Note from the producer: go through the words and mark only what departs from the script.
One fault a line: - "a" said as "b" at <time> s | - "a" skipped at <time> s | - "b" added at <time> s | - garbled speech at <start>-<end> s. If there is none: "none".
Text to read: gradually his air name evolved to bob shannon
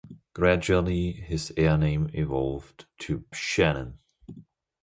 - "bob" skipped at 3.2 s